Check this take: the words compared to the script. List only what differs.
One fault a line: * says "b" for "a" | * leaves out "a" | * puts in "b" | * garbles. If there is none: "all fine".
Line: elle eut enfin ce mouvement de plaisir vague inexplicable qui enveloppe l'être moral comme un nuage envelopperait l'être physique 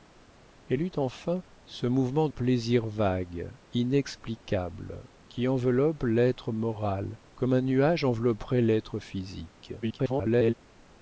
* leaves out "de"
* garbles